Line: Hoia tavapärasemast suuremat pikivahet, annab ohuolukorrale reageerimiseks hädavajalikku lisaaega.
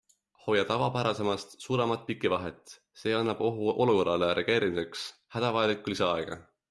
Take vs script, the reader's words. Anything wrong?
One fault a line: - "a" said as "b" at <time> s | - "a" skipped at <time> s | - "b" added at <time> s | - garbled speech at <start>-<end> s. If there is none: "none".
- "see" added at 3.0 s